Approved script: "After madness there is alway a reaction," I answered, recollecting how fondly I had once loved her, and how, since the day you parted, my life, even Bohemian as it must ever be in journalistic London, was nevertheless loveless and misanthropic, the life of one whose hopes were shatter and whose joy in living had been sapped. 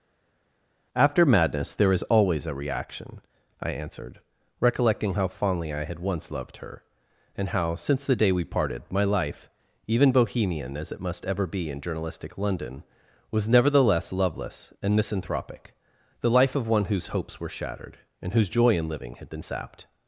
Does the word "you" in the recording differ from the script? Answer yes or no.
yes